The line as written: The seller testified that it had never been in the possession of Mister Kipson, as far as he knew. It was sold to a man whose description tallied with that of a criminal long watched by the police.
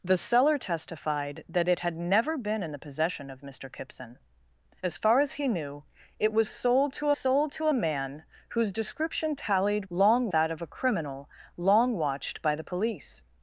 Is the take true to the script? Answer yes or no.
no